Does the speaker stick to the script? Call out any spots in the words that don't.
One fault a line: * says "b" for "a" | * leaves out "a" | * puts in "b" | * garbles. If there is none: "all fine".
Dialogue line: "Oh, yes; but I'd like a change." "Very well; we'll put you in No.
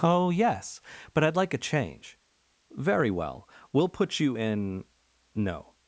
all fine